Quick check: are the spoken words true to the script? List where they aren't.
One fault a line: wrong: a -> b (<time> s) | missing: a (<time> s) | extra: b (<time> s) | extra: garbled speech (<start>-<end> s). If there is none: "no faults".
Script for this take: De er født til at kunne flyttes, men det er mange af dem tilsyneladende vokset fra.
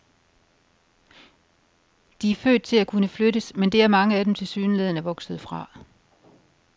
no faults